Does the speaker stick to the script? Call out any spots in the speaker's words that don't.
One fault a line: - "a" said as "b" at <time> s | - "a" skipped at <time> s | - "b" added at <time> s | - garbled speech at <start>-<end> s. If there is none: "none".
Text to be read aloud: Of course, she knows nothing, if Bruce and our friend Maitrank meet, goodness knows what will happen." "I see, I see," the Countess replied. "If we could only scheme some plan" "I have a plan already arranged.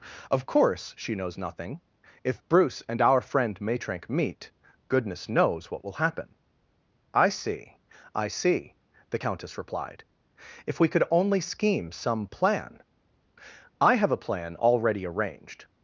none